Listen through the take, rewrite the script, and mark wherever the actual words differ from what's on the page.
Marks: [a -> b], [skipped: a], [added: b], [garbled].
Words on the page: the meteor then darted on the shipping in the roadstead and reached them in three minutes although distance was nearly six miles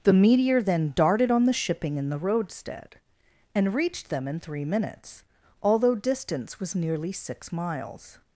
the meteor then darted on the shipping in the roadstead and reached them in three minutes although distance was nearly six miles